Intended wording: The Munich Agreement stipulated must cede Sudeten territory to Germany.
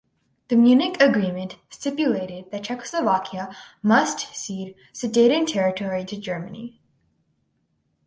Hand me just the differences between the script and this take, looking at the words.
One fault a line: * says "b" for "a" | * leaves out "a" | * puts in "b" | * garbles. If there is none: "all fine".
* puts in "that Czechoslovakia"